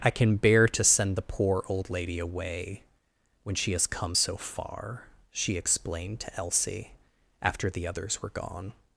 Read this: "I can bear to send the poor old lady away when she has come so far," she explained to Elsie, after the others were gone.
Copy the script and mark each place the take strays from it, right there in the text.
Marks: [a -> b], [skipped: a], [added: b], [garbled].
"I can bear to send the poor old lady away when she has come so far," she explained to Elsie, after the others were gone.